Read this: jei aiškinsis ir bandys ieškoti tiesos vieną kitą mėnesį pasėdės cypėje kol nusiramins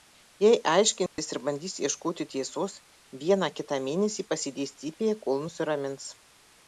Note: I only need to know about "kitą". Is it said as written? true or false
true